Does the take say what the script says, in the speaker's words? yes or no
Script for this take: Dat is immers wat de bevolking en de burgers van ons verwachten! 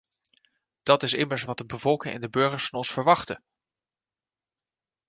yes